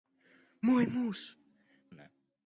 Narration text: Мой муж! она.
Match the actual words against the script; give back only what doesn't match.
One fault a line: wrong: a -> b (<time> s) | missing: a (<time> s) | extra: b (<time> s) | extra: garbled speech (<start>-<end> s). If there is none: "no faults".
no faults